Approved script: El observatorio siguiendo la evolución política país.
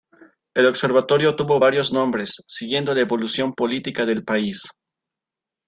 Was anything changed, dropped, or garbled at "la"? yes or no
no